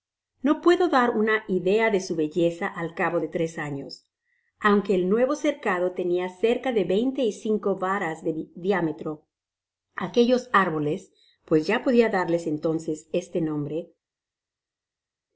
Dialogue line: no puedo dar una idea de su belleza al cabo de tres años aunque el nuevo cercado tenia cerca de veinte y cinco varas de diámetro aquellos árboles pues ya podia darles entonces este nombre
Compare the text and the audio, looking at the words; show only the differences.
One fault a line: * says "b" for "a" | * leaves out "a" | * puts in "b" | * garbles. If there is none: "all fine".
all fine